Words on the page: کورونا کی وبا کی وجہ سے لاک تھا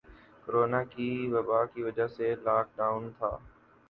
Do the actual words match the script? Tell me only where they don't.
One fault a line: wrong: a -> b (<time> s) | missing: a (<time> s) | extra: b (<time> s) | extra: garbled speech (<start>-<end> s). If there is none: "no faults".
extra: ڈاؤن (2.8 s)